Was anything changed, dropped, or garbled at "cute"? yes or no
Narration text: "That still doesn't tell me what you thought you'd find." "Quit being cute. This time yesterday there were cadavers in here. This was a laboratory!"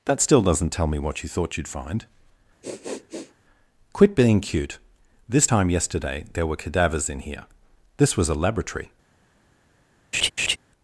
no